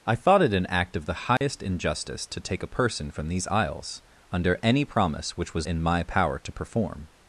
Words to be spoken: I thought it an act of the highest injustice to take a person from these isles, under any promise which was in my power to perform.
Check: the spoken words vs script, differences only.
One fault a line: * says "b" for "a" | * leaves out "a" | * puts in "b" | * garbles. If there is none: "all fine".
all fine